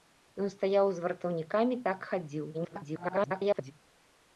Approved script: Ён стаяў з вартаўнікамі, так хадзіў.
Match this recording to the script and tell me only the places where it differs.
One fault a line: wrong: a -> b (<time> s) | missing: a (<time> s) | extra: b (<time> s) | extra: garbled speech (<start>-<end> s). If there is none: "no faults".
extra: garbled speech (2.5-3.7 s)